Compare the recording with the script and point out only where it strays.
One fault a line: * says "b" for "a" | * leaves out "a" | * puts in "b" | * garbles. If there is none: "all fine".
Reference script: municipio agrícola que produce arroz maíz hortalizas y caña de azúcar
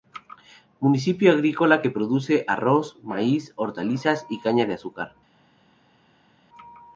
all fine